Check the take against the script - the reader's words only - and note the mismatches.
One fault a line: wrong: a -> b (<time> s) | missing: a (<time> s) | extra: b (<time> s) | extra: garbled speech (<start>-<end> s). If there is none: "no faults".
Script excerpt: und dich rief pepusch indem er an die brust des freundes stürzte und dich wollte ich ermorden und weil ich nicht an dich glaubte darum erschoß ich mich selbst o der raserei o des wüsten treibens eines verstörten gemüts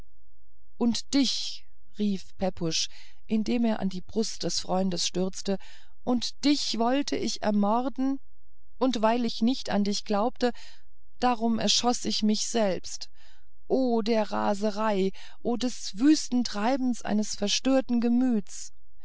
no faults